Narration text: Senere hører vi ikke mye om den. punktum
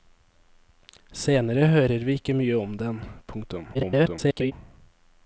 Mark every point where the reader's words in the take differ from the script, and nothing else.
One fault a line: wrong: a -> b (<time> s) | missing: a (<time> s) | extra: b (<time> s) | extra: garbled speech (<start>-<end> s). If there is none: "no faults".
extra: garbled speech (3.7-4.5 s)